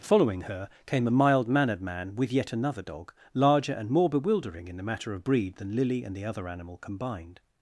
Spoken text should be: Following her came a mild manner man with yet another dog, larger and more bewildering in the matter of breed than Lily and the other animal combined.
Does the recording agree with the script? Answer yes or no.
no